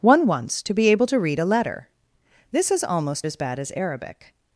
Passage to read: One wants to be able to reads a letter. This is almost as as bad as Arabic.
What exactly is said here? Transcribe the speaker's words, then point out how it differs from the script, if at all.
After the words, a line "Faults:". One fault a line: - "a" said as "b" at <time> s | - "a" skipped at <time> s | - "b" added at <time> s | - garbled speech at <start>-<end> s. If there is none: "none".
One wants to be able to read a letter. This is almost as bad as Arabic.
Faults:
- "reads" said as "read" at 1.2 s
- "as" skipped at 3.3 s